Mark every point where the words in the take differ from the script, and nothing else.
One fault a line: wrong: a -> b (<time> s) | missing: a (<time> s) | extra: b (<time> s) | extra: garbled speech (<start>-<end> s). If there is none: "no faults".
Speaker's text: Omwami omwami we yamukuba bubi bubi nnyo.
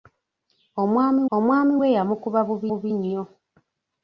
no faults